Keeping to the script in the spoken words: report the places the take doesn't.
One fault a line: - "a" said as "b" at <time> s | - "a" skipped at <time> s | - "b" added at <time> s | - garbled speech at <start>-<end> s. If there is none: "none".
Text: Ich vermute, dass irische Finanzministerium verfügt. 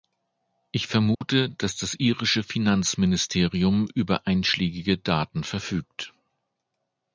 - "das" added at 1.8 s
- "über einschlägige Daten" added at 3.9 s